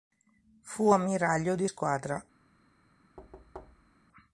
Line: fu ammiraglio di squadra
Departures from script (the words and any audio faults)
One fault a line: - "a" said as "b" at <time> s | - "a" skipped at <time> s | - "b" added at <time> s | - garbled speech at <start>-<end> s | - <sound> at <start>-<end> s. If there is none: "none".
- thud at 3.2-4.0 s